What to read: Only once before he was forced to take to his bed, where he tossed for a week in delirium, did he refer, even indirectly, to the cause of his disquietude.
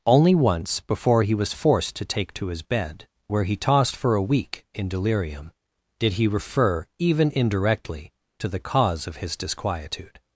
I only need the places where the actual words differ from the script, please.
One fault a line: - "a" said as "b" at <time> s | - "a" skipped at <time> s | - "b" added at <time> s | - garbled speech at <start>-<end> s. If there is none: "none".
none